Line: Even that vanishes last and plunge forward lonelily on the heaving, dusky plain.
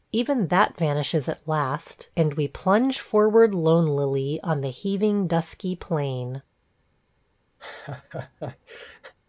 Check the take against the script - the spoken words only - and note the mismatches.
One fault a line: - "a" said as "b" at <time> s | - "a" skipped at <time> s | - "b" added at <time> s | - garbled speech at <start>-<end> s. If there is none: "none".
- "at" added at 1.3 s
- "we" added at 2.3 s